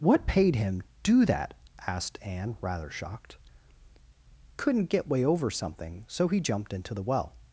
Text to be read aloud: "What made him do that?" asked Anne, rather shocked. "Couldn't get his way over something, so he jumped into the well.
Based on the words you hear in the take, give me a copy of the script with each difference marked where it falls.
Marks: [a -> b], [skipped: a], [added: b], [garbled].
"What [made -> paid] him do that?" asked Anne, rather shocked. "Couldn't get [skipped: his] way over something, so he jumped into the well.